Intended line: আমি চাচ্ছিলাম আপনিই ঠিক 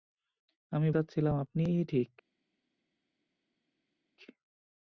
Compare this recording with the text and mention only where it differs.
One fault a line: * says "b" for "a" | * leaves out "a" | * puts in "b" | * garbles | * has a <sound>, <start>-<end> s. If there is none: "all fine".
all fine